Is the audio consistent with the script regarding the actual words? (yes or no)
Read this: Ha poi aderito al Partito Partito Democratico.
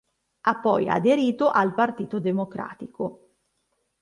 no